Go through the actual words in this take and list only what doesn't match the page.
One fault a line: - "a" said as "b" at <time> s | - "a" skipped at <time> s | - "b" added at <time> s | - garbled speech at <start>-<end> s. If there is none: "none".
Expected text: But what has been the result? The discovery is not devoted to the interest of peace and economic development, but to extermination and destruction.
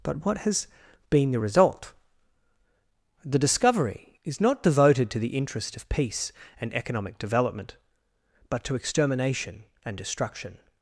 none